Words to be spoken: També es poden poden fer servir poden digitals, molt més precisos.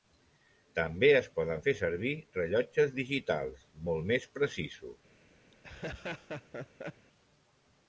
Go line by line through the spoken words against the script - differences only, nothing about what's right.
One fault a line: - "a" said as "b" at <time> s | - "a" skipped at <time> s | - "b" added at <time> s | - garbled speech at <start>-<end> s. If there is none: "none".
- "poden" skipped at 1.6 s
- "poden" said as "rellotges" at 2.4 s